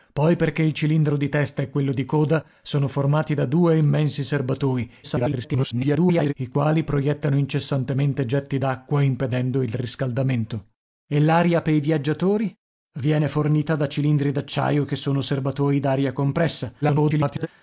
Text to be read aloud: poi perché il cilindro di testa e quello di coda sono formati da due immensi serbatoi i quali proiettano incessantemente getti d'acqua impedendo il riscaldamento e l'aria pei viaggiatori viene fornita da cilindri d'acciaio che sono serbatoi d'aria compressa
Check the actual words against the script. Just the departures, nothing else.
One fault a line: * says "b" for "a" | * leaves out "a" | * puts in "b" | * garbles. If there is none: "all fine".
* garbles
* garbles